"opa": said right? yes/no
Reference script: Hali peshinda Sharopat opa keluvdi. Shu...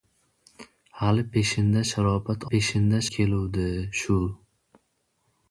no